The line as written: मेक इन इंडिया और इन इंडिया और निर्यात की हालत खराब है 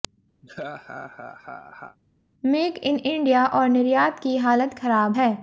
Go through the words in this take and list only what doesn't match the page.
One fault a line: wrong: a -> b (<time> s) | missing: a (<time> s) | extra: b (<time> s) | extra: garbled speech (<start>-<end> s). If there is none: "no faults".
missing: इन इंडिया और (3.7 s)